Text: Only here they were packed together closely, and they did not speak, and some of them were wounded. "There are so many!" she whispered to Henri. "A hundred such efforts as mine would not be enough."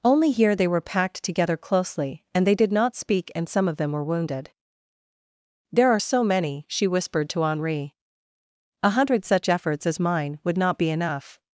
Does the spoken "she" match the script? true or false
true